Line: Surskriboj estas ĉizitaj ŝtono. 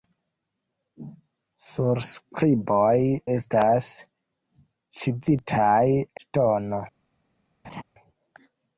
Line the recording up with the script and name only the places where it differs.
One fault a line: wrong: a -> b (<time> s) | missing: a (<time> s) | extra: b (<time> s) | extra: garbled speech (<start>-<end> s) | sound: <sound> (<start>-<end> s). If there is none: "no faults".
sound: laugh (7.6-7.8 s)